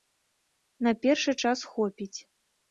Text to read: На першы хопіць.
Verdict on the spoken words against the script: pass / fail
fail